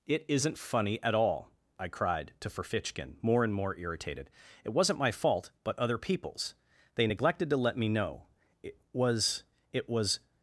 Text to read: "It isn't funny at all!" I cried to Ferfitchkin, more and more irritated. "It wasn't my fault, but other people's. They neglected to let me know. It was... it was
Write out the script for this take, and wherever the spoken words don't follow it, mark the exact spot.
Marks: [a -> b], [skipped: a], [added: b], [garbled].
"It isn't funny at all!" I cried to Ferfitchkin, more and more irritated. "It wasn't my fault, but other people's. They neglected to let me know. It was... it was